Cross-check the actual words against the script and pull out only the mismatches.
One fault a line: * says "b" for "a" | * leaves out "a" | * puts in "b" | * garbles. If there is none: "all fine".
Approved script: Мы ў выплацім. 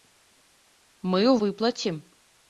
all fine